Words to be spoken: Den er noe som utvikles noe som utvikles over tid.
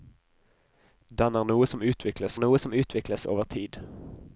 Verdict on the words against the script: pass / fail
pass